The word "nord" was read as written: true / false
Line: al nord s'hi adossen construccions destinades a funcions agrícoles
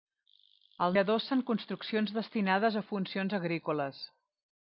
false